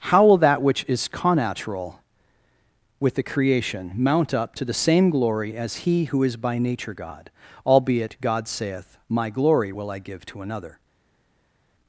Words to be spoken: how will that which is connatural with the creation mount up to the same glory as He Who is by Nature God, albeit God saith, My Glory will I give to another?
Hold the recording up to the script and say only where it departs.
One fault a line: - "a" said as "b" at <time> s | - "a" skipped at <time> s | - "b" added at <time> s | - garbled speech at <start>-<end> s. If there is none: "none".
none